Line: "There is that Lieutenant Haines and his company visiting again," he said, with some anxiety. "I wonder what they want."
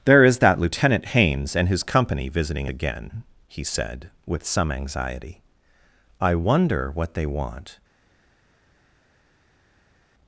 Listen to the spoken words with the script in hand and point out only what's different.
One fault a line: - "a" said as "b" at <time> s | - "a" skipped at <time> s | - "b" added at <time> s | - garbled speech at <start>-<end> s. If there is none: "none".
none